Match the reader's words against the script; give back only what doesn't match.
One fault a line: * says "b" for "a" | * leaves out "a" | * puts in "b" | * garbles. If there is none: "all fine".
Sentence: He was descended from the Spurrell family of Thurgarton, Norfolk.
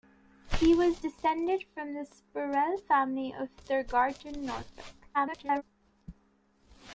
* garbles